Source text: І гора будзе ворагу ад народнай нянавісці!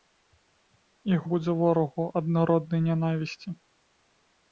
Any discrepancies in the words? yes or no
yes